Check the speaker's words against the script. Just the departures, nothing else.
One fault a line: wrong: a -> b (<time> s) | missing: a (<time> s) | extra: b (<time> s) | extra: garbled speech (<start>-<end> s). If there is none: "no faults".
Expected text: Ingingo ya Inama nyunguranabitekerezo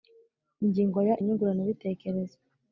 missing: Inama (1.1 s)